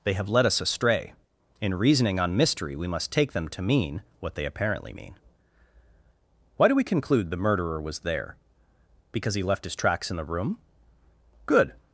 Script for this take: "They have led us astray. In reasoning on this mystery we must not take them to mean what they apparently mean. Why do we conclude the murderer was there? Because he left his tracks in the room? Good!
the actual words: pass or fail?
fail